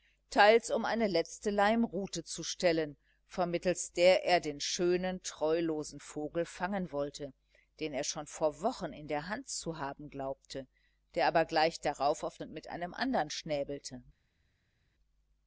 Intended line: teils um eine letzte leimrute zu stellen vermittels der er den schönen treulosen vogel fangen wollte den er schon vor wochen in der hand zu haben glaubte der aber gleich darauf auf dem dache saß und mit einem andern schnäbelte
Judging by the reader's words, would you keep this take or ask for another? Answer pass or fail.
fail